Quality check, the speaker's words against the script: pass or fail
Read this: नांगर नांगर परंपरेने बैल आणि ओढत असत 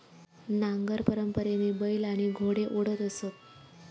fail